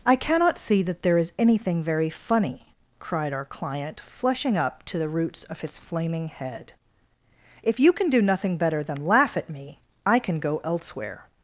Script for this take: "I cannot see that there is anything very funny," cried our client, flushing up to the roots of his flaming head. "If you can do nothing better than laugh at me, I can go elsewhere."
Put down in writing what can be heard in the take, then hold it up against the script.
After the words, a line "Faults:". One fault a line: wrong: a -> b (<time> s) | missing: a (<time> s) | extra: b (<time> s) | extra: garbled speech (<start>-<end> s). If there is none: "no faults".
"I cannot see that there is anything very funny," cried our client, flushing up to the roots of his flaming head. "If you can do nothing better than laugh at me, I can go elsewhere."
Faults:
no faults